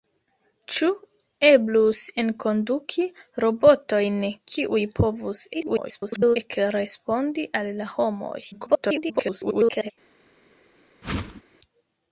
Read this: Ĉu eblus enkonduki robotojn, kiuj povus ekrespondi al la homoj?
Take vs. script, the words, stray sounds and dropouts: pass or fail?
fail